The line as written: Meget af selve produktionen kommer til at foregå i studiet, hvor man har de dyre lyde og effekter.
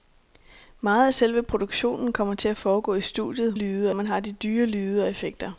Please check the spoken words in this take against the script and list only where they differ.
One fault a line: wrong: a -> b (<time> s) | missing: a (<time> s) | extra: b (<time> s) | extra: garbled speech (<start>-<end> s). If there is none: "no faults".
wrong: hvor -> lyde (3.5 s)